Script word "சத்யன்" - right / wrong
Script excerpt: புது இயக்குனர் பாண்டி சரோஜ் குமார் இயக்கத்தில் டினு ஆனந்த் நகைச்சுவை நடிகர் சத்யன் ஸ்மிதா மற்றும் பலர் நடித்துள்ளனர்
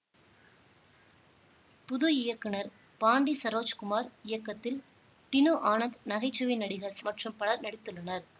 wrong